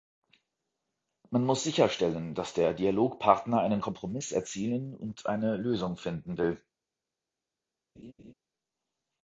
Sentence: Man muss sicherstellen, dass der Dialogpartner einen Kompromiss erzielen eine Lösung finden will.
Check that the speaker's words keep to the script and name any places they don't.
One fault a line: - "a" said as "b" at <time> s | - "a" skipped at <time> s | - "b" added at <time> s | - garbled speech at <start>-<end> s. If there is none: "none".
- "und" added at 5.0 s